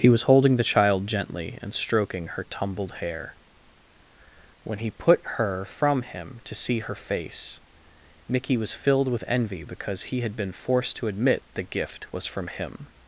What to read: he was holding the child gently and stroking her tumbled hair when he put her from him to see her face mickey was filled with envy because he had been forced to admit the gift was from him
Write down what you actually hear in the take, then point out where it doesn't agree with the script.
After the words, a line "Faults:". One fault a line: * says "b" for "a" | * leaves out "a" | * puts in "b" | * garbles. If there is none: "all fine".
he was holding the child gently and stroking her tumbled hair when he put her from him to see her face mickey was filled with envy because he had been forced to admit the gift was from him
Faults:
all fine